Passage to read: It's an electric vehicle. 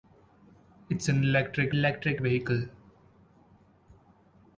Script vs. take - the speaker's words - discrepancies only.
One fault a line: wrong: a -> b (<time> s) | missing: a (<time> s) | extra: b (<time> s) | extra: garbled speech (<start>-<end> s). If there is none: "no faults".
extra: electric (1.7 s)